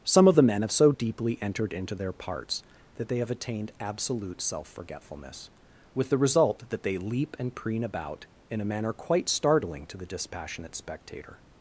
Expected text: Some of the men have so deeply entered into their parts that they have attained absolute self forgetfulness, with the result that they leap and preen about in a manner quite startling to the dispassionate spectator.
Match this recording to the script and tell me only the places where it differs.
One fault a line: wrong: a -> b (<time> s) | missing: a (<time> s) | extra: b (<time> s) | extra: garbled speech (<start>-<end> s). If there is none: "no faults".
no faults